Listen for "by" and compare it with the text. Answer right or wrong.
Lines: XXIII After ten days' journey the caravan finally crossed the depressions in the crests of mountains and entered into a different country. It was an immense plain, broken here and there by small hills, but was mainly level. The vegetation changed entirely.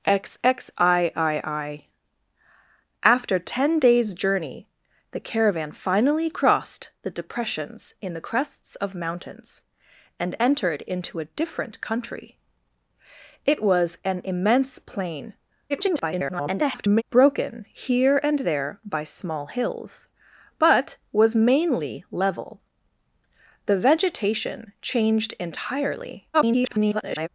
right